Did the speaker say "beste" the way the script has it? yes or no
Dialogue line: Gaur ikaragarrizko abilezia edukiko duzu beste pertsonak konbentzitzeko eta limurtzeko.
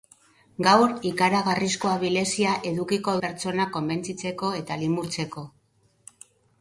no